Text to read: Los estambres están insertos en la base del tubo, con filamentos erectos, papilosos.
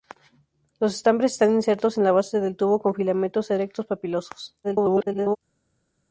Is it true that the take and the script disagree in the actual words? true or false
true